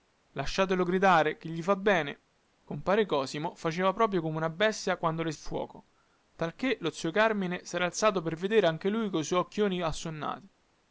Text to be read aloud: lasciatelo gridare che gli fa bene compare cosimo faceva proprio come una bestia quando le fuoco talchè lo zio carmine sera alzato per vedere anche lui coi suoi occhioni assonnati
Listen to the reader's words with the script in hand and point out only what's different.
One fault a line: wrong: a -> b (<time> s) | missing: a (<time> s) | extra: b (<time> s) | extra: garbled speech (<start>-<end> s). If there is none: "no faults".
no faults